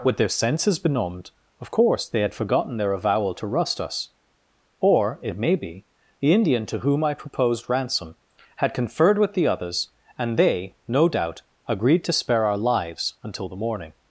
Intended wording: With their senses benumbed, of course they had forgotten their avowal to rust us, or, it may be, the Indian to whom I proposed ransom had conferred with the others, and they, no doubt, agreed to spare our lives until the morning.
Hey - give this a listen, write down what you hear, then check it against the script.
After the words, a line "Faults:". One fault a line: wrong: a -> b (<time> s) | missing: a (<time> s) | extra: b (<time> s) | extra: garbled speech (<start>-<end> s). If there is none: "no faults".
With their senses benumbed, of course they had forgotten their avowal to rust us, or, it may be, the Indian to whom I proposed ransom had conferred with the others, and they, no doubt, agreed to spare our lives until the morning.
Faults:
no faults